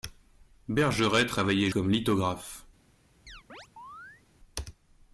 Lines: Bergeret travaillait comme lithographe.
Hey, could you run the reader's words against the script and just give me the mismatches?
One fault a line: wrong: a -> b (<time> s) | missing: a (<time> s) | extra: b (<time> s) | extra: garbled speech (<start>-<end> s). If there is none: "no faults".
no faults